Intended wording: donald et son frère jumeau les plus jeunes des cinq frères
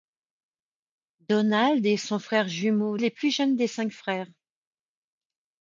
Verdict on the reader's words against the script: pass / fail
pass